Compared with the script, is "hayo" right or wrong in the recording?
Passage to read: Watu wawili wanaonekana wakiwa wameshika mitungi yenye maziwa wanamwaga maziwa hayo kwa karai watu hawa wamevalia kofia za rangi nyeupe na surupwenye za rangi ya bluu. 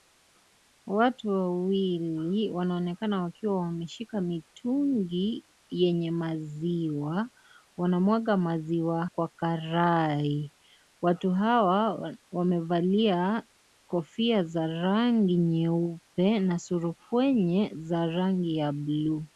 wrong